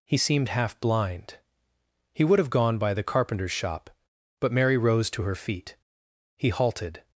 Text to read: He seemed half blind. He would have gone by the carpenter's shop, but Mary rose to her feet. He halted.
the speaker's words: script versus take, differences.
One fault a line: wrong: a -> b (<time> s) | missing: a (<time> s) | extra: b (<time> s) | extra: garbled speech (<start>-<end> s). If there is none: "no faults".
no faults